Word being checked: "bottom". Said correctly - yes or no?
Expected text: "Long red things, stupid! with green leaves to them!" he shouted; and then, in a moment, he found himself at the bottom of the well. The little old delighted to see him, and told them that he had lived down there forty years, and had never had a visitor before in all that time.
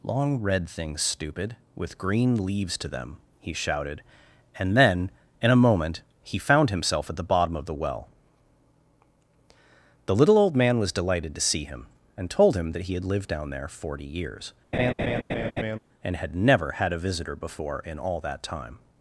yes